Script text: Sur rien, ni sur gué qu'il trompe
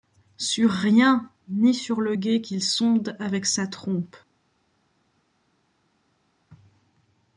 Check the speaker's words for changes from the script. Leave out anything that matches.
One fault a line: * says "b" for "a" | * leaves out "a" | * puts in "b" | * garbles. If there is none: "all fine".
* puts in "le"
* puts in "sonde avec sa"